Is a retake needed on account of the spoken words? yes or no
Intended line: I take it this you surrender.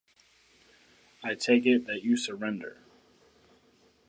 yes